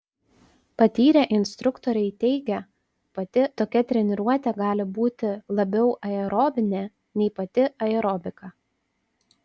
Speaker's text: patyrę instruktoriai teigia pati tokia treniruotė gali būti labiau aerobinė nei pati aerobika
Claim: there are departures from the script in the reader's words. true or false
false